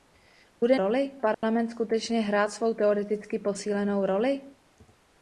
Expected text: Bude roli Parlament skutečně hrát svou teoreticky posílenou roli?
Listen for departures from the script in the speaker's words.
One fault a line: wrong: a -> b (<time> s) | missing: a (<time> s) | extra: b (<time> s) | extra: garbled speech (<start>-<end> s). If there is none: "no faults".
no faults